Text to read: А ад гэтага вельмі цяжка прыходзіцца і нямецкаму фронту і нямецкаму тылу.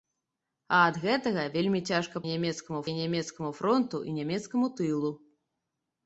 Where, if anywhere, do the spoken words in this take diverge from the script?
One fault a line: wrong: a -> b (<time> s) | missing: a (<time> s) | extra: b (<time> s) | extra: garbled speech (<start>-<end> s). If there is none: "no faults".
wrong: прыходзіцца -> нямецкаму (2.3 s)